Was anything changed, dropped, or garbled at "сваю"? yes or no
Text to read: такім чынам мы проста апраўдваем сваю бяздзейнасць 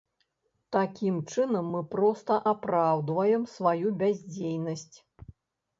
no